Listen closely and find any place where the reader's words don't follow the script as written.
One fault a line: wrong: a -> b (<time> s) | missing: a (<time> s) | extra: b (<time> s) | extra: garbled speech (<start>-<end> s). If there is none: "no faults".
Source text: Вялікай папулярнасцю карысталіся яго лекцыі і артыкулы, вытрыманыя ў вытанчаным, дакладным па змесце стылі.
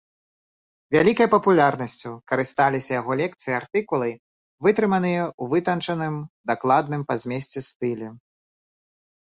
no faults